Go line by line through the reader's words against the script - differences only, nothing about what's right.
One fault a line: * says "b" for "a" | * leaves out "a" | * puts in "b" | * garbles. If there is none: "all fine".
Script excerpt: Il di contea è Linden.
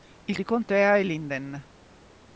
all fine